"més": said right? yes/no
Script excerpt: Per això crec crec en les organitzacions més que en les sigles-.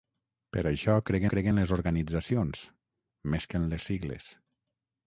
yes